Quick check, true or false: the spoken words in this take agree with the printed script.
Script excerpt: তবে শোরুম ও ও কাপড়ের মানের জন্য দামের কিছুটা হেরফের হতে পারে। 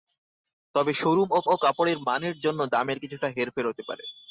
true